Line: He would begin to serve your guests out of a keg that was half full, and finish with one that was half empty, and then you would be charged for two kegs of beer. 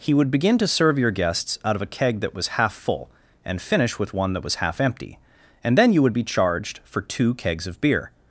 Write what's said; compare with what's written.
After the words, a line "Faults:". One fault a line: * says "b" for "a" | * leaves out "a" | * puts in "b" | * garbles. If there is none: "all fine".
He would begin to serve your guests out of a keg that was half full, and finish with one that was half empty, and then you would be charged for two kegs of beer.
Faults:
all fine